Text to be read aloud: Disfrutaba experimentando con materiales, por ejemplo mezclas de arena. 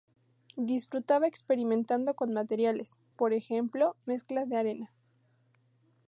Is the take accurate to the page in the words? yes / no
yes